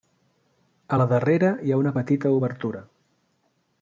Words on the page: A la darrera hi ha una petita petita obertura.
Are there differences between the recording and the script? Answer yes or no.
yes